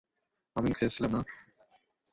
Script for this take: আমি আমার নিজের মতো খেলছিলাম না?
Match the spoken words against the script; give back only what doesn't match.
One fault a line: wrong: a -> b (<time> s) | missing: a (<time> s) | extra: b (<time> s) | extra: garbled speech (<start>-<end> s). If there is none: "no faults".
missing: আমার নিজের মতো (0.7 s)